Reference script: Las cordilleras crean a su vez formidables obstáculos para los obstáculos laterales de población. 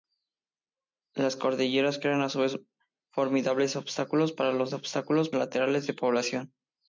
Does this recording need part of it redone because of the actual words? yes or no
no